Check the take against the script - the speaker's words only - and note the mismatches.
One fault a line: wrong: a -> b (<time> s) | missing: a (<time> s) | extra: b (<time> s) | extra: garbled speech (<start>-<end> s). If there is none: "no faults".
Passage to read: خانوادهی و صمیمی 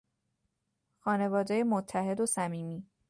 extra: متحد (1.6 s)